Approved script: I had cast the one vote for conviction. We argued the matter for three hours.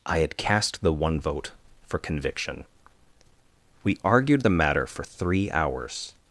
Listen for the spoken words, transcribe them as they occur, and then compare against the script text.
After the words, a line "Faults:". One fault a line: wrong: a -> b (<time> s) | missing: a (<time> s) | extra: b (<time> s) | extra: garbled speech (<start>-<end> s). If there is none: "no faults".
I had cast the one vote for conviction. We argued the matter for three hours.
Faults:
no faults